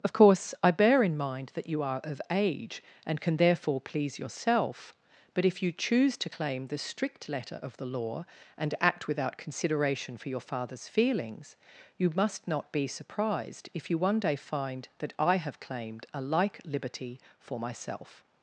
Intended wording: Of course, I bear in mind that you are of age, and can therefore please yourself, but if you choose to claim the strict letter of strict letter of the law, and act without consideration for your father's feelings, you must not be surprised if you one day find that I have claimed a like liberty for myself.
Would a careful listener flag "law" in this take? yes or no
no